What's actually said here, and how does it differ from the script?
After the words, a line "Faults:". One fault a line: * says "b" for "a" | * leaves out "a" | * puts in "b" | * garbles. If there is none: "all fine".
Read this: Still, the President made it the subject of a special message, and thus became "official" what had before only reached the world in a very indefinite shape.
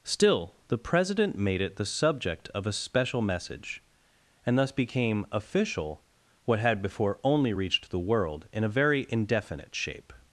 Still, the President made it the subject of a special message, and thus became "official" what had before only reached the world in a very indefinite shape.
Faults:
all fine